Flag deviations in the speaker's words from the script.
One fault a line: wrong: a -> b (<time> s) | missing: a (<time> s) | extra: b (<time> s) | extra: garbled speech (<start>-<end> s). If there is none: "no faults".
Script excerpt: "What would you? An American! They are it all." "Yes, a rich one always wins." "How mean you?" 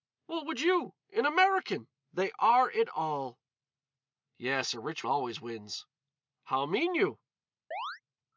missing: one (5.0 s)